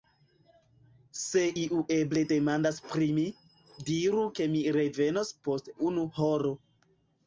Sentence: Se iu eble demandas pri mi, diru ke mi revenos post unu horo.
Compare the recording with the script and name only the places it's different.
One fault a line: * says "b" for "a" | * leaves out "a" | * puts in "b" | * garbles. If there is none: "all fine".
all fine